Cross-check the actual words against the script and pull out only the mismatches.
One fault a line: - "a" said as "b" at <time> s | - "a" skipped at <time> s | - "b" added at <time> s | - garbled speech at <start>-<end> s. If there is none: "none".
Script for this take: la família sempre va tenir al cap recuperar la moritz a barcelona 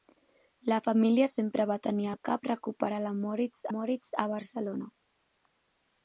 - "moritz" added at 3.7 s